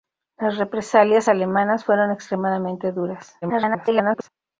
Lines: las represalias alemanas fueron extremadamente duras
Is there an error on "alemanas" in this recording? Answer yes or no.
no